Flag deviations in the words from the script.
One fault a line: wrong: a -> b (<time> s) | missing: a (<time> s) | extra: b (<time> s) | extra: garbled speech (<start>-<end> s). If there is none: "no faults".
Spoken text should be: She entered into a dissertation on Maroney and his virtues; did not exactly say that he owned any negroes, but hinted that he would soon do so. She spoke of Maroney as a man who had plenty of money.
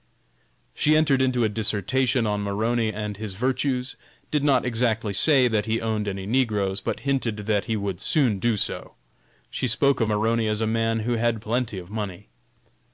no faults